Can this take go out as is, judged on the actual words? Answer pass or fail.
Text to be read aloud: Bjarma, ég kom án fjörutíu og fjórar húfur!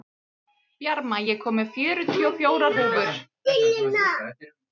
fail